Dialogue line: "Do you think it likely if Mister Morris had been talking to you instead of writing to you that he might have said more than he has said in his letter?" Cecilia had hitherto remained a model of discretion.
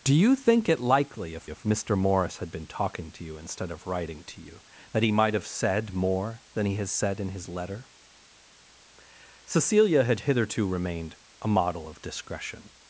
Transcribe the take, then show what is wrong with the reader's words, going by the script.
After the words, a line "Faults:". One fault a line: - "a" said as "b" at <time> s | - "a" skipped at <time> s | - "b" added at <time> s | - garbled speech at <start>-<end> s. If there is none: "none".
"Do you think it likely if if Mister Morris had been talking to you instead of writing to you that he might have said more than he has said in his letter?" Cecilia had hitherto remained a model of discretion.
Faults:
- "if" added at 1.5 s